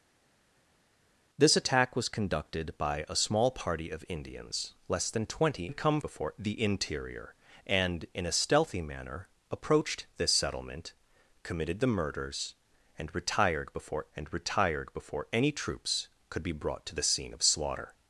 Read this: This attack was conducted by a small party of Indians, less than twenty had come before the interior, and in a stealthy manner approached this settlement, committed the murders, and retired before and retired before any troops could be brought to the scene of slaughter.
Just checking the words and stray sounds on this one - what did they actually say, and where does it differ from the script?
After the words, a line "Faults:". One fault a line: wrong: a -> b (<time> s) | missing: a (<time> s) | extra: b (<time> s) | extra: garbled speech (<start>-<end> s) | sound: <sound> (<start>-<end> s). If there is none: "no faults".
This attack was conducted by a small party of Indians, less than twenty had come before the interior, and in a stealthy manner approached this settlement, committed the murders, and retired before and retired before any troops could be brought to the scene of slaughter.
Faults:
no faults